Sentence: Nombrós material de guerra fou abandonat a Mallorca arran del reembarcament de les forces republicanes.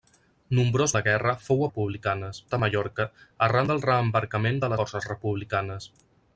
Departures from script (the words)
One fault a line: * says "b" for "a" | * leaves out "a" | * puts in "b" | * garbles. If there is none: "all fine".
* leaves out "material"
* says "republicanes" for "abandonat"
* leaves out "les"